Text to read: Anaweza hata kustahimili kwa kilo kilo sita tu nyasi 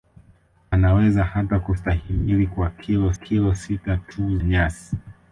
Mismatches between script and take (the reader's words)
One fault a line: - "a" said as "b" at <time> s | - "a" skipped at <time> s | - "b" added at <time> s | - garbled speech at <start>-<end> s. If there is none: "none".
none